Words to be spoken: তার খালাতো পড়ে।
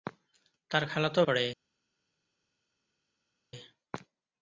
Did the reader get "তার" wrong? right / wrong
right